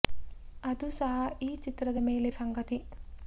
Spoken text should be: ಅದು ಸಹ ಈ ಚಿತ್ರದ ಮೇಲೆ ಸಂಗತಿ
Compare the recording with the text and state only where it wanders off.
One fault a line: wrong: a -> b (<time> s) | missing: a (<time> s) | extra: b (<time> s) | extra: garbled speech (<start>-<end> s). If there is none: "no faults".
no faults